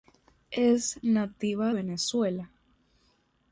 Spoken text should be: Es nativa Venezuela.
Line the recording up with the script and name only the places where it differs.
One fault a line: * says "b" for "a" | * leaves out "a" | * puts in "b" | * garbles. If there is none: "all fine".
all fine